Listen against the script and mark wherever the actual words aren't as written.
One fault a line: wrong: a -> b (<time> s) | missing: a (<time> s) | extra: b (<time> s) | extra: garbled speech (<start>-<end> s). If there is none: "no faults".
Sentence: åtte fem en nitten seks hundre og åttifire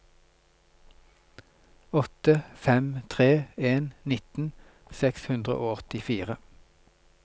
extra: tre (3.1 s)